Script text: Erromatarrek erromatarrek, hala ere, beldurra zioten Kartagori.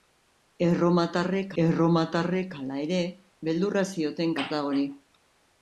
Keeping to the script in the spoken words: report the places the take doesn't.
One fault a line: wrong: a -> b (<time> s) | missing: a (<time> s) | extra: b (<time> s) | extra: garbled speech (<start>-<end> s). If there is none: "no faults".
no faults